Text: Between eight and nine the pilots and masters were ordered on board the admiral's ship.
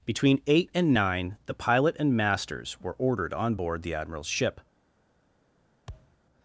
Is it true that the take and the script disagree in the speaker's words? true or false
true